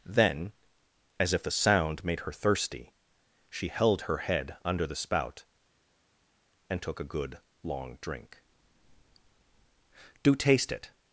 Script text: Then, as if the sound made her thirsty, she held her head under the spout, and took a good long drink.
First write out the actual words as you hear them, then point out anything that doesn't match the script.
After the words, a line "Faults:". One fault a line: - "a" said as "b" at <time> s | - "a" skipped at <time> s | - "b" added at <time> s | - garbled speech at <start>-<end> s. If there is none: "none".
Then, as if the sound made her thirsty, she held her head under the spout, and took a good long drink. "Do taste it
Faults:
- "Do taste it" added at 10.2 s